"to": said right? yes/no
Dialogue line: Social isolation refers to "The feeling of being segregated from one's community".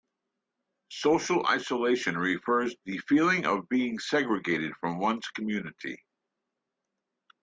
no